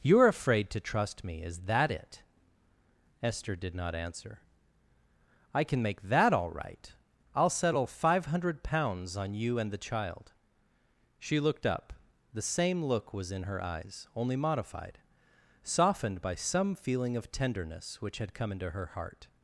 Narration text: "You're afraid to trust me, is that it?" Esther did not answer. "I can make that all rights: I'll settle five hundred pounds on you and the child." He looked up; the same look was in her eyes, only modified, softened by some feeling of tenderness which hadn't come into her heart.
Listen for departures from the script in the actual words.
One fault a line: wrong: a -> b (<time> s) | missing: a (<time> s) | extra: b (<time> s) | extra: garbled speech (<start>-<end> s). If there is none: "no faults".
wrong: rights -> right (6.5 s)
wrong: He -> She (11.2 s)
wrong: hadn't -> had (18.2 s)